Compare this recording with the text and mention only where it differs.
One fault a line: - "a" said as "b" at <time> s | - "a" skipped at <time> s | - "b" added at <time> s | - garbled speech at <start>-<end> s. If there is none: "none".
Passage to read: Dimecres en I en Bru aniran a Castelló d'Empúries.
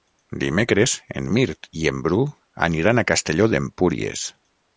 - "Mirt" added at 1.4 s